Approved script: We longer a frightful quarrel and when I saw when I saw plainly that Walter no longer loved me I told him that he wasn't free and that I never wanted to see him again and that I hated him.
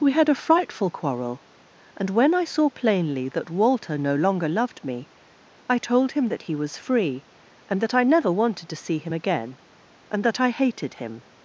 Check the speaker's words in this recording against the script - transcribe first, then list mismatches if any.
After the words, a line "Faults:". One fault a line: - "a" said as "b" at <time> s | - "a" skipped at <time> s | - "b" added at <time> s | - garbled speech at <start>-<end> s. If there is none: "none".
We had a frightful quarrel and when I saw plainly that Walter no longer loved me I told him that he was free and that I never wanted to see him again and that I hated him.
Faults:
- "longer" said as "had" at 0.1 s
- "when I saw" skipped at 2.7 s
- "wasn't" said as "was" at 6.6 s